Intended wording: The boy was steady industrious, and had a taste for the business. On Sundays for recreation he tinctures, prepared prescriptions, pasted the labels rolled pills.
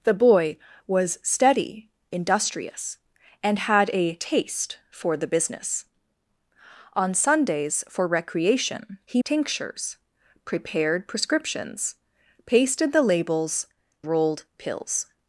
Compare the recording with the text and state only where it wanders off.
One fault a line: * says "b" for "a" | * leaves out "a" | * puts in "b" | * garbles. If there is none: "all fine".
all fine